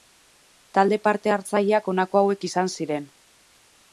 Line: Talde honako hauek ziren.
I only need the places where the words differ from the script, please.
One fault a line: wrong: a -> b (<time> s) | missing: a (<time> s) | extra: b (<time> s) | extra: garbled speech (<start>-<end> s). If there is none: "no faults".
extra: parte hartzaileak (1.1 s)
extra: izan (2.5 s)